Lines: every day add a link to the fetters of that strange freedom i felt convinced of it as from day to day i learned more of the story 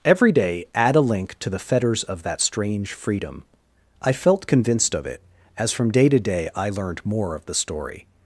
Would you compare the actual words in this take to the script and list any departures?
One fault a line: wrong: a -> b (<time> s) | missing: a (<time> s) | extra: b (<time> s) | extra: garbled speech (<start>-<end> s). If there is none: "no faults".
no faults